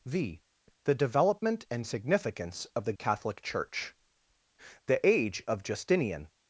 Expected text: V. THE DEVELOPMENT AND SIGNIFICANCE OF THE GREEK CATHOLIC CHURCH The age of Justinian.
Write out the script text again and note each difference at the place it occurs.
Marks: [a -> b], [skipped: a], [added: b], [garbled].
V. THE DEVELOPMENT AND SIGNIFICANCE OF THE [skipped: GREEK] CATHOLIC CHURCH The age of Justinian.